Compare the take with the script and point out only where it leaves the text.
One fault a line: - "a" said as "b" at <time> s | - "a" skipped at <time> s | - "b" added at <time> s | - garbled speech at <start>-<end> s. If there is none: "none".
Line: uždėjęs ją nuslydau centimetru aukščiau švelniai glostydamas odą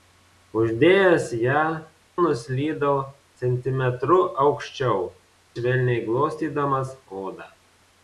none